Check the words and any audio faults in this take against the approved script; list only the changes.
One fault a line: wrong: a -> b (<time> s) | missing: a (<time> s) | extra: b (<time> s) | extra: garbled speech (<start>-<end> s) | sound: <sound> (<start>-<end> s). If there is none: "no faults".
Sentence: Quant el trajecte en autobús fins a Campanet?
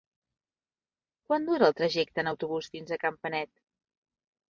extra: dura (1.5 s)